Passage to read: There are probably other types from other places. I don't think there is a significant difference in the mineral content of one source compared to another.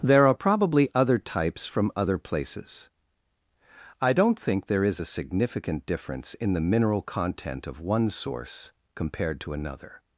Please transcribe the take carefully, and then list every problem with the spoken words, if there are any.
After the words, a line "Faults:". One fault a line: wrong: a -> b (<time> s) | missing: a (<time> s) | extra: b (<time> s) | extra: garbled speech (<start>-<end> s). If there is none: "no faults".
There are probably other types from other places. I don't think there is a significant difference in the mineral content of one source compared to another.
Faults:
no faults